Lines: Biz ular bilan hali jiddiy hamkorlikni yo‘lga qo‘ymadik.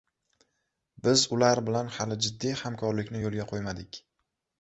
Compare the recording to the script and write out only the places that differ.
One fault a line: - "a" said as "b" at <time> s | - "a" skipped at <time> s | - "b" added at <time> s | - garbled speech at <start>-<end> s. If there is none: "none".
none